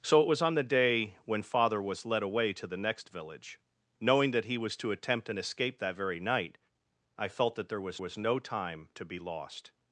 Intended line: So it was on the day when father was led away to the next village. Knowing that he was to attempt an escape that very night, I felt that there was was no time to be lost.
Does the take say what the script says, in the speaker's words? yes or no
yes